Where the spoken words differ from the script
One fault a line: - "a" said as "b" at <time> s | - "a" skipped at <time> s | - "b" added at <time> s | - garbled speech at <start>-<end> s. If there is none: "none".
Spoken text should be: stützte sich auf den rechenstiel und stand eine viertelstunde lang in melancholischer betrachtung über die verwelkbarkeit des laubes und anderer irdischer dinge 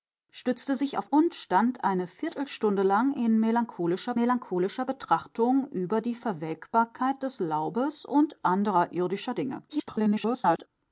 - "den rechenstiel" skipped at 1.1 s
- "melancholischer" added at 4.1 s
- garbled speech at 9.7-10.7 s